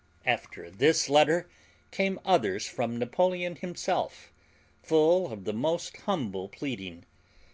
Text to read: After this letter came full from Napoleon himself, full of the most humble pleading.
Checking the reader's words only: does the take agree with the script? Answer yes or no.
no